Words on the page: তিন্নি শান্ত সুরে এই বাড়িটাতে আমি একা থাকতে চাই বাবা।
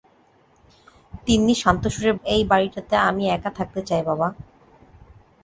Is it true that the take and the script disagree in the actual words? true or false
false